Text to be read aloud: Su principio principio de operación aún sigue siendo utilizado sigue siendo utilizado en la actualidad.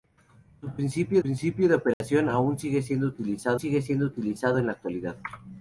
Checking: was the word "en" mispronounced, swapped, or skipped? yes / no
no